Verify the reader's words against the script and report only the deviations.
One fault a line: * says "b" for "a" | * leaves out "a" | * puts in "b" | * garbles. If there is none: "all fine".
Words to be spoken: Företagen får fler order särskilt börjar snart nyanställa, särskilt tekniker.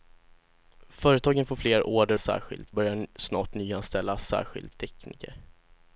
all fine